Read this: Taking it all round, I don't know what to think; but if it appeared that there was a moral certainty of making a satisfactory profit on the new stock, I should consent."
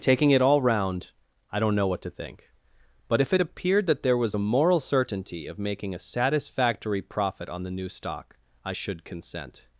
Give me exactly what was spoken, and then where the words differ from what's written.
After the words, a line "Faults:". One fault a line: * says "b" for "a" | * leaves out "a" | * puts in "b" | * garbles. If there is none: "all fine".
Taking it all round, I don't know what to think; but if it appeared that there was a moral certainty of making a satisfactory profit on the new stock, I should consent."
Faults:
all fine